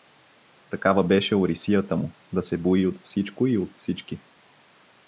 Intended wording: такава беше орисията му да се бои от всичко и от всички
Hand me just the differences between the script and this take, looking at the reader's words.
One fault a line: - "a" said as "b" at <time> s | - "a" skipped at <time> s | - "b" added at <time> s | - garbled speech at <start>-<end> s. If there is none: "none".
none